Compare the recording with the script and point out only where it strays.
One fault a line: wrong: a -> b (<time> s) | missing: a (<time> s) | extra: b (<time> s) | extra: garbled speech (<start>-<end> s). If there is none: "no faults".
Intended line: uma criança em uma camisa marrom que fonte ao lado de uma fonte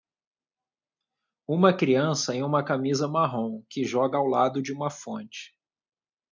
wrong: fonte -> joga (3.8 s)